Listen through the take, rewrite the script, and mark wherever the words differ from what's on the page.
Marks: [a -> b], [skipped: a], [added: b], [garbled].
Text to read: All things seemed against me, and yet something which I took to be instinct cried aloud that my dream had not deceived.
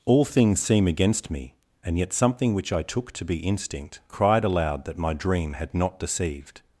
All things [seemed -> seem] against me, and yet something which I took to be instinct cried aloud that my dream had not deceived.